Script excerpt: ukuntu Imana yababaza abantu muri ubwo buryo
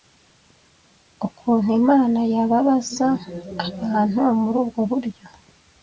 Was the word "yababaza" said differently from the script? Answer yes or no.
no